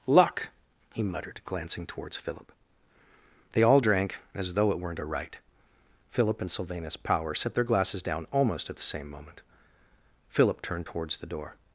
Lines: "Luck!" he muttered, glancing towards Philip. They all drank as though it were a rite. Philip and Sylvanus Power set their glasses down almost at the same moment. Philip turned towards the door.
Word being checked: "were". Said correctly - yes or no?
no